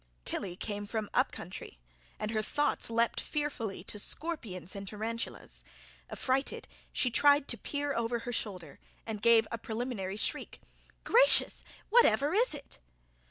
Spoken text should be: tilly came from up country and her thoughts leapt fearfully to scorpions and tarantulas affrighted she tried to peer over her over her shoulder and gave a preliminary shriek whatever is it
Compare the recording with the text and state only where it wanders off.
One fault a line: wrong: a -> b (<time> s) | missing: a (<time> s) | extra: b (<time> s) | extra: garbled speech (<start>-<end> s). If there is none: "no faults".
missing: over her (8.3 s)
extra: gracious (11.0 s)